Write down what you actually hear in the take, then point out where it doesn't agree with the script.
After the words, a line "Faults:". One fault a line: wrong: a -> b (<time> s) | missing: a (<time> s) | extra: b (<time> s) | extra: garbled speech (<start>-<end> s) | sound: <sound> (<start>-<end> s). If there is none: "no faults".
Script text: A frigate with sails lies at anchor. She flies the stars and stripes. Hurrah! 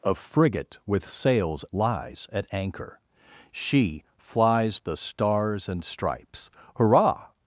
A frigate with sails lies at anchor. She flies the stars and stripes. Hurrah!
Faults:
no faults